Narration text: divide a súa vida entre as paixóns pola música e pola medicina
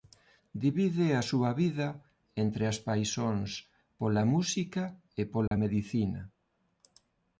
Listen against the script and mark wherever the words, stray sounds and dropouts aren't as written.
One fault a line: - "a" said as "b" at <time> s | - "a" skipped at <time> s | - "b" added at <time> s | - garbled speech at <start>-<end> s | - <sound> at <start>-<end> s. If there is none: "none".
- dropout at 5.5-5.5 s